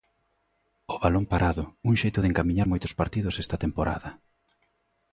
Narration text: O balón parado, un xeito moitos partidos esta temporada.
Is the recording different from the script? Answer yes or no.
yes